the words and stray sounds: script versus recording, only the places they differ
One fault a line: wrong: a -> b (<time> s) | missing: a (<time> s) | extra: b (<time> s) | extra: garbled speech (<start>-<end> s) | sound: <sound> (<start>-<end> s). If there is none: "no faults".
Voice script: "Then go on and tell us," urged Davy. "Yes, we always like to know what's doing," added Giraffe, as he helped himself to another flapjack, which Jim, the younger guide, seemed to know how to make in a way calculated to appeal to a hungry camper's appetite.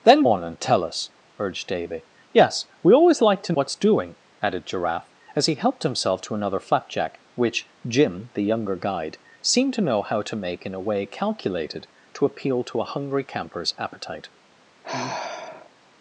missing: go (0.2 s)
missing: know (3.5 s)
sound: sigh (14.8-15.7 s)